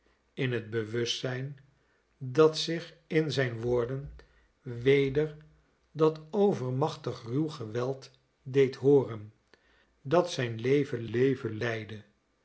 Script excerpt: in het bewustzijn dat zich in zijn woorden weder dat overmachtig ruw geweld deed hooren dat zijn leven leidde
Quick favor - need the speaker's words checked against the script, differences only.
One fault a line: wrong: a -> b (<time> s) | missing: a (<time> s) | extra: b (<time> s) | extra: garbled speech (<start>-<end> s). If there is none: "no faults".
extra: leven (11.1 s)